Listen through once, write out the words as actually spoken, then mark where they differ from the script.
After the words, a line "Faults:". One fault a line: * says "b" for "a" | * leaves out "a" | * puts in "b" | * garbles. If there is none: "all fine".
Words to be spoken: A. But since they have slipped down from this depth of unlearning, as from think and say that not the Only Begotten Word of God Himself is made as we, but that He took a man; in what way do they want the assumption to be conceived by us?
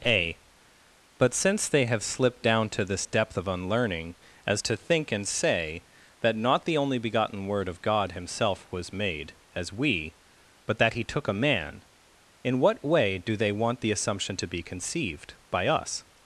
A. But since they have slipped down to this depth of unlearning, as to think and say that not the Only Begotten Word of God Himself was made as we, but that He took a man; in what way do they want the assumption to be conceived by us?
Faults:
* says "to" for "from"
* says "to" for "from"
* says "was" for "is"